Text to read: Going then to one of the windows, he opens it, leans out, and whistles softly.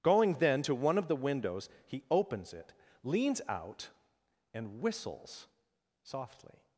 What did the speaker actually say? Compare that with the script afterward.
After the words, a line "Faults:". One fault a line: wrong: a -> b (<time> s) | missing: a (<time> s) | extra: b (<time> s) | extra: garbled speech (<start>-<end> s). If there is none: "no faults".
Going then to one of the windows, he opens it, leans out, and whistles softly.
Faults:
no faults